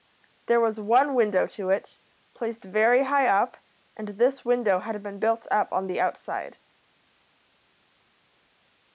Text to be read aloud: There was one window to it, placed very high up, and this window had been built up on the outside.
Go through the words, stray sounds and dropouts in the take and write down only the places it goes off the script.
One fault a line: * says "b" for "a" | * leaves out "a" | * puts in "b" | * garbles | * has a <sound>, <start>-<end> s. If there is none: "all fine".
all fine